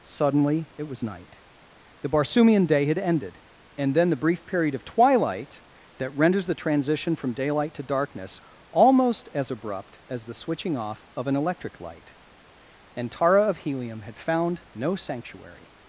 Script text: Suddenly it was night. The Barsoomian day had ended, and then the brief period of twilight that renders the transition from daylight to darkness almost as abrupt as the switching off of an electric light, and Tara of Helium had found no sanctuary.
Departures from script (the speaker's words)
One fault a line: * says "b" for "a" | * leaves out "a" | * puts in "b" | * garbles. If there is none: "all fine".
all fine